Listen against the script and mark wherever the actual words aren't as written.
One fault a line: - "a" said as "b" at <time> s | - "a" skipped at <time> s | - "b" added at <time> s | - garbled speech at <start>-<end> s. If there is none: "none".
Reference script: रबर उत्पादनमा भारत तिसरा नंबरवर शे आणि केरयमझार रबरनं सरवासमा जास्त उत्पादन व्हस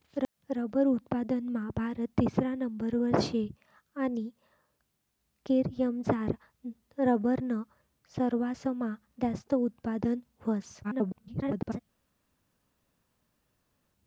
- garbled speech at 10.8-11.8 s